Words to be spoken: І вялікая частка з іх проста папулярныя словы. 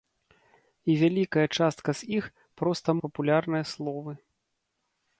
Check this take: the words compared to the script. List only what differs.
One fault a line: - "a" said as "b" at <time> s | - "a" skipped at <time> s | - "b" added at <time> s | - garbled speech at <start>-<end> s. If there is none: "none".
none